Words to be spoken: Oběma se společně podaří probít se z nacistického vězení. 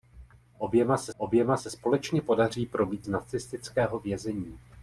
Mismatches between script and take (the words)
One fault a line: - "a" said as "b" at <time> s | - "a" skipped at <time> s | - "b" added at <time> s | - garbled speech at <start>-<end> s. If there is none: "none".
- "oběma se" added at 1.2 s
- "se" skipped at 3.1 s